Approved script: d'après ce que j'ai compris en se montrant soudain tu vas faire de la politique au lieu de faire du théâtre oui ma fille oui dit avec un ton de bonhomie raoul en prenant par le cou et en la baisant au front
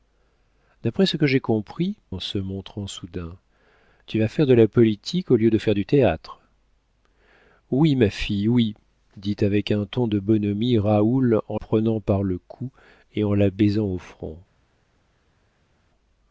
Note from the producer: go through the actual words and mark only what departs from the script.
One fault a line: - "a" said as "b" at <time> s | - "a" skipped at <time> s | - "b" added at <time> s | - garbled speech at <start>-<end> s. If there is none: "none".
none